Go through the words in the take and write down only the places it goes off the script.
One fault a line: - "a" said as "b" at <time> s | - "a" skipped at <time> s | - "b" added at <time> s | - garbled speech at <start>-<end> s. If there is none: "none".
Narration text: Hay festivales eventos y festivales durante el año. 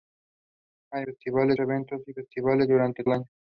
none